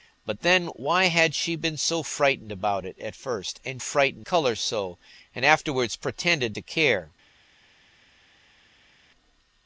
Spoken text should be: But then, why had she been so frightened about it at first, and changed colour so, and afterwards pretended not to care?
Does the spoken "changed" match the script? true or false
false